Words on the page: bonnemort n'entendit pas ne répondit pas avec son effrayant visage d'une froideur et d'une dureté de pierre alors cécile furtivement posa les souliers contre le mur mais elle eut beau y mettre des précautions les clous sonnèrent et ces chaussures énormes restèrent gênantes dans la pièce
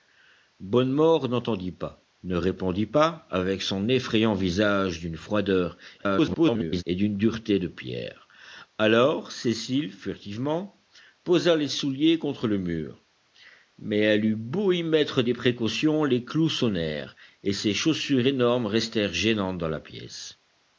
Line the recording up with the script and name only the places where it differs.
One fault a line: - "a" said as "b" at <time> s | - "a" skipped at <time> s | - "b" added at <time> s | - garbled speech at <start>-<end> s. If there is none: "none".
- garbled speech at 6.0-6.8 s